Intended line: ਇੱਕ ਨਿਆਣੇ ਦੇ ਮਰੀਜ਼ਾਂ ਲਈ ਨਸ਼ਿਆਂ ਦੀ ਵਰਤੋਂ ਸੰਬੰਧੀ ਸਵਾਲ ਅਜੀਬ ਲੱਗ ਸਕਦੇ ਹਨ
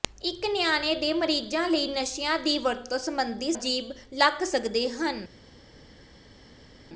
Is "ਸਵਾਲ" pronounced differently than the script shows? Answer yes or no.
yes